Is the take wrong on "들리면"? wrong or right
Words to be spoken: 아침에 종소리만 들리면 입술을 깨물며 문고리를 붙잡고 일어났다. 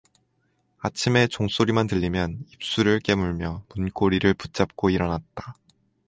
right